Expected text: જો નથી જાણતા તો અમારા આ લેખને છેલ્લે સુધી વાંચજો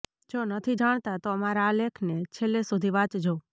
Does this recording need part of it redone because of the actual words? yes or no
no